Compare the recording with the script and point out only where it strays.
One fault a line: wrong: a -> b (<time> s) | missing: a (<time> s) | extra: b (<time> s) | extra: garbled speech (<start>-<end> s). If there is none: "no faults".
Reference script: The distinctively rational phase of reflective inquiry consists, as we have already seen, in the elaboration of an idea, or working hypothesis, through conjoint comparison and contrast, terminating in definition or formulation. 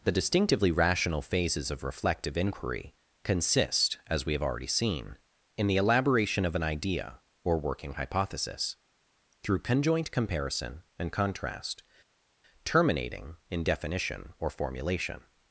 wrong: phase -> phases (1.2 s)
wrong: consists -> consist (3.2 s)